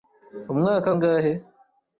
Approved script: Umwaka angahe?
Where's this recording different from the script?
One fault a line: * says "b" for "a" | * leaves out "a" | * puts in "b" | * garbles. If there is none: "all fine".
all fine